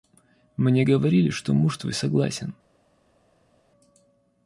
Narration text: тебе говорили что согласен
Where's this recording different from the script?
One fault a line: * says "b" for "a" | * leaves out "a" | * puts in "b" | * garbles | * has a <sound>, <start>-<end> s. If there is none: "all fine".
* says "мне" for "тебе"
* puts in "муж твой"